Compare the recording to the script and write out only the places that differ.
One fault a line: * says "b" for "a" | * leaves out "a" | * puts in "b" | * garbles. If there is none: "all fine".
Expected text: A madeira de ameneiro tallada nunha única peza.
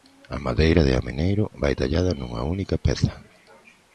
* puts in "vai"